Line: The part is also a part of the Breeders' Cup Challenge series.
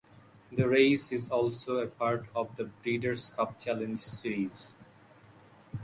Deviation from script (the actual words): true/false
true